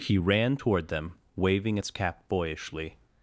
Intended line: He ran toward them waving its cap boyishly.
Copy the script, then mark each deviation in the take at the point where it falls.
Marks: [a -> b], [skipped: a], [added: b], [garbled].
He ran toward them waving its cap boyishly.